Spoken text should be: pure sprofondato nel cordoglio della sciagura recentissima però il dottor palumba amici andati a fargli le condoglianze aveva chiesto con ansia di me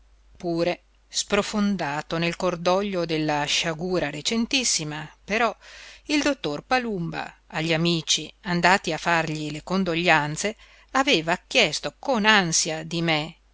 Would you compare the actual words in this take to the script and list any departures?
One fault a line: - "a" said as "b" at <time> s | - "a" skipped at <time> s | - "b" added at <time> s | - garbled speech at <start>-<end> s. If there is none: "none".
- "agli" added at 7.5 s